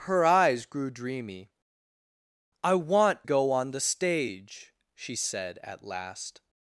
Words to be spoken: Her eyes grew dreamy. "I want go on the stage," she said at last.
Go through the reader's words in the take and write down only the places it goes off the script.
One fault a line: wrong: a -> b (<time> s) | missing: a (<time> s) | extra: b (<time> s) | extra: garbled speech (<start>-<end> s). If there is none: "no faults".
no faults